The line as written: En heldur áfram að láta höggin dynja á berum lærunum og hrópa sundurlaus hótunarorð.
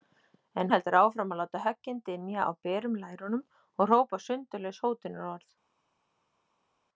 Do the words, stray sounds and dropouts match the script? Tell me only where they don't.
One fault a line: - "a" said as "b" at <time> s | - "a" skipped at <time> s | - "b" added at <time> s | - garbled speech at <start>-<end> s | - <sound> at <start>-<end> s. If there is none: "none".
none